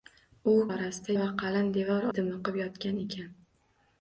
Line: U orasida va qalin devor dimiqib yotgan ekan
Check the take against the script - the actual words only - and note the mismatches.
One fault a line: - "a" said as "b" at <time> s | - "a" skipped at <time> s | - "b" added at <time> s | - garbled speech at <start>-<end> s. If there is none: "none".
none